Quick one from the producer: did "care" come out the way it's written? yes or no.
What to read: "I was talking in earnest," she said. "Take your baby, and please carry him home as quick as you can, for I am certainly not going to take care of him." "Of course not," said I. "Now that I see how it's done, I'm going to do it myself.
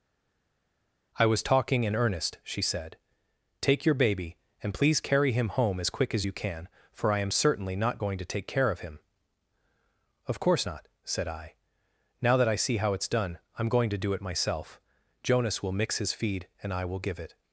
yes